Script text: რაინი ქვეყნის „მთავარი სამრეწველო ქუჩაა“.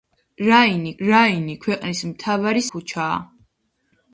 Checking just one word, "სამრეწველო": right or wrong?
wrong